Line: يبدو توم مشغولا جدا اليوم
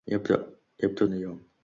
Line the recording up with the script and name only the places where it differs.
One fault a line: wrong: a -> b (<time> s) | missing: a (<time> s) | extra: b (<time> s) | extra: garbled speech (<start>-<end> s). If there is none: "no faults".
missing: توم مشغولا جدا (1.1 s)